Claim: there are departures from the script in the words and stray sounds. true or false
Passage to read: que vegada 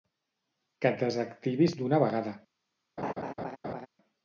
true